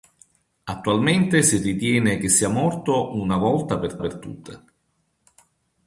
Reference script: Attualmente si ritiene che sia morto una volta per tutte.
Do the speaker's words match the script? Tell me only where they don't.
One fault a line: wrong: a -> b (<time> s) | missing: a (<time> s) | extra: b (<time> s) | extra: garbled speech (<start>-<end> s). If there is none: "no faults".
extra: per (4.0 s)